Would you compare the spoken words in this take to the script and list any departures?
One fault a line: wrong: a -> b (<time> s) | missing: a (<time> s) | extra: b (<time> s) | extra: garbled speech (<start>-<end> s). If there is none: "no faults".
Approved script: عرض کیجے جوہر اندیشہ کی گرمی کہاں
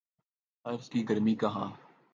missing: کیجے جوہر اندیشہ (0.9 s)